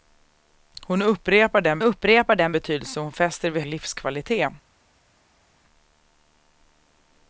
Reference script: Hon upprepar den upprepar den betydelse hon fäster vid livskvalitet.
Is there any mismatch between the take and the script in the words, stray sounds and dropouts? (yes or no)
no